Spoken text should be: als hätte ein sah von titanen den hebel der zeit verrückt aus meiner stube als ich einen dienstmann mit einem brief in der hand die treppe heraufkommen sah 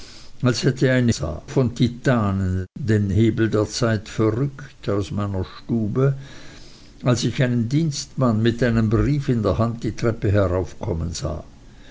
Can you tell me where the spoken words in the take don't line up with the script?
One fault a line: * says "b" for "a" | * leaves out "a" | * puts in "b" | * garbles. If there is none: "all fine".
all fine